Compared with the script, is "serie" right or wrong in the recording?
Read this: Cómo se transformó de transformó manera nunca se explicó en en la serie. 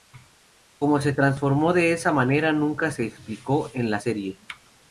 right